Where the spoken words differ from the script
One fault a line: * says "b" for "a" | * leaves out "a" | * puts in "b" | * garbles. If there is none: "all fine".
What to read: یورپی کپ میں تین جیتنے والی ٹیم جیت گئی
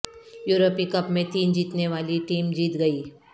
all fine